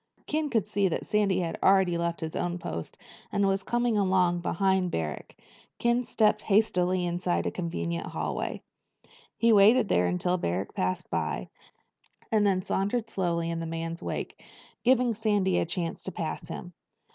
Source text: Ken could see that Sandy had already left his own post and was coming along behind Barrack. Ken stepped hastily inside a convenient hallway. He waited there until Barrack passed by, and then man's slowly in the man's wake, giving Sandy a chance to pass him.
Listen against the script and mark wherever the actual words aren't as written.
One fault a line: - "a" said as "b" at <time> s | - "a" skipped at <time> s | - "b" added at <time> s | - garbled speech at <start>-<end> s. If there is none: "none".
- "man's" said as "sauntered" at 12.6 s